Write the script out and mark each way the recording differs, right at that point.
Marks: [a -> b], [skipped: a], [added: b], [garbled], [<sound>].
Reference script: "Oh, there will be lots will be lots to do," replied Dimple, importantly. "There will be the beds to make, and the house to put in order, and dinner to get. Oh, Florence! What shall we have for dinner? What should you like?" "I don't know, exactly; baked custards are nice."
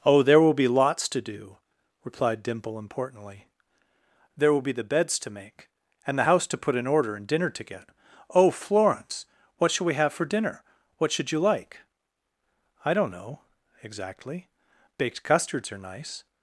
"Oh, there will be lots [skipped: will be lots] to do," replied Dimple, importantly. "There will be the beds to make, and the house to put in order, and dinner to get. Oh, Florence! What shall we have for dinner? What should you like?" "I don't know, exactly; baked custards are nice."